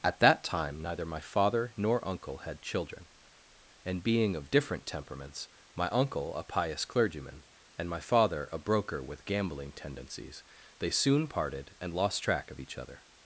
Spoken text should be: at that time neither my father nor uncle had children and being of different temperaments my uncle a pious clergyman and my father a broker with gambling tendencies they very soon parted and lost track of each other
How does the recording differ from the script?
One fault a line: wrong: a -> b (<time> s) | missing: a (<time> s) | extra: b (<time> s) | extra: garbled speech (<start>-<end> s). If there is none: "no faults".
missing: very (10.9 s)